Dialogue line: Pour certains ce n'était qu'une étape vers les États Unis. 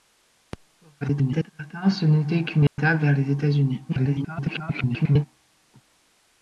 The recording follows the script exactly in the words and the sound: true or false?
false